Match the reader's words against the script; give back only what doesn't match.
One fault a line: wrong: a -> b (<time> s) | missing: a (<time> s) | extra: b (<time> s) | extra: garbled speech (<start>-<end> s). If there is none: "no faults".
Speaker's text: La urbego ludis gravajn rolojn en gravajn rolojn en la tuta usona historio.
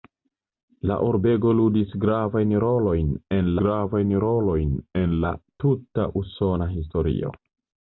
no faults